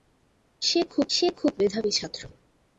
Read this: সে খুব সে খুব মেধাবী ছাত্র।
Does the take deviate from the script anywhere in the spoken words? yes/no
no